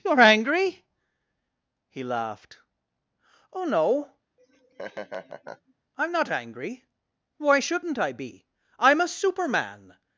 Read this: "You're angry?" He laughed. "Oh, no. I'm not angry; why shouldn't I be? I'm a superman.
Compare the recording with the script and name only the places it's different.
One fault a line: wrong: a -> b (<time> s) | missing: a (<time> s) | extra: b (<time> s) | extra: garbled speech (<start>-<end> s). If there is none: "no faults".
no faults